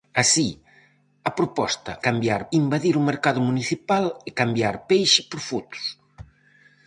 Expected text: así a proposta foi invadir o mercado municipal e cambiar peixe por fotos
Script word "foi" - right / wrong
wrong